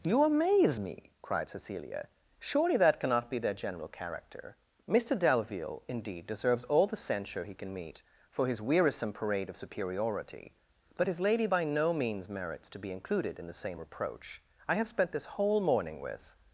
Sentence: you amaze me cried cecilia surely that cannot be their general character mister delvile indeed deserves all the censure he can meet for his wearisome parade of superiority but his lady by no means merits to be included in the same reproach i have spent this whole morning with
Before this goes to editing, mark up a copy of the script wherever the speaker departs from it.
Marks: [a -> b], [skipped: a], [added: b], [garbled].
you amaze me cried cecilia surely that cannot be their general character mister delvile indeed deserves all the censure he can meet for his wearisome parade of superiority but his lady by no means merits to be included in the same reproach i have spent this whole morning with